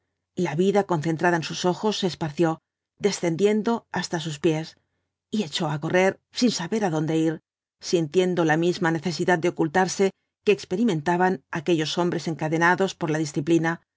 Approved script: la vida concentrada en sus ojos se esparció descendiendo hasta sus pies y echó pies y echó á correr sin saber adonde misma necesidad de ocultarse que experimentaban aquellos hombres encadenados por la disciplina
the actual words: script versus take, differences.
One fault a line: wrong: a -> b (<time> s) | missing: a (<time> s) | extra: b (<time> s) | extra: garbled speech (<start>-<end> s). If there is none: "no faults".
missing: pies y echó (5.7 s)
extra: ir sintiendo la (7.2 s)